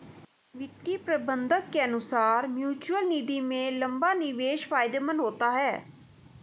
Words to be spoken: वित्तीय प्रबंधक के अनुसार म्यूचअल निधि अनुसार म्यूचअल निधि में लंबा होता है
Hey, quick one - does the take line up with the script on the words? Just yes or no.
no